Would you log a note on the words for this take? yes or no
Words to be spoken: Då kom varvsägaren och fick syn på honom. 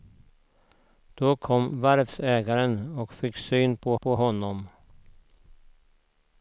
yes